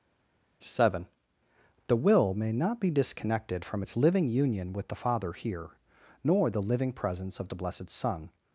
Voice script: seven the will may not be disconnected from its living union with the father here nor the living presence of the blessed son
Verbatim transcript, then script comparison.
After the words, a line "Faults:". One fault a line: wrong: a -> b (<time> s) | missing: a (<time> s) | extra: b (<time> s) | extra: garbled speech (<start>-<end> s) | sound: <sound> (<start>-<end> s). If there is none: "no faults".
seven the will may not be disconnected from its living union with the father here nor the living presence of the blessed son
Faults:
no faults